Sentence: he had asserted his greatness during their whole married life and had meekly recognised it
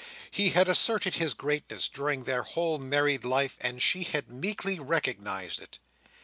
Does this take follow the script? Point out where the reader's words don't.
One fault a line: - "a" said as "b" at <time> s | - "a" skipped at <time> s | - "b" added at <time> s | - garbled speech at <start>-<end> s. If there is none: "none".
- "she" added at 3.8 s